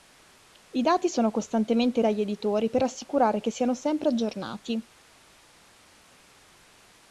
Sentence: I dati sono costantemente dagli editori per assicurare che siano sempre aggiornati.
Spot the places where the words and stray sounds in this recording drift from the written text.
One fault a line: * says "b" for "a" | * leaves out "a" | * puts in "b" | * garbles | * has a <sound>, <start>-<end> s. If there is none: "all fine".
all fine